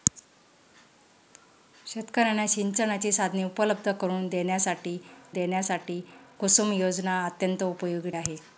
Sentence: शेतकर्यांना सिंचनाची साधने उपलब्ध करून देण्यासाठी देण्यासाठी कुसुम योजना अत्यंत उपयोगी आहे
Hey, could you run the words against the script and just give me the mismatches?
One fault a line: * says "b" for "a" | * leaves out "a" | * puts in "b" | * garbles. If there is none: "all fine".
all fine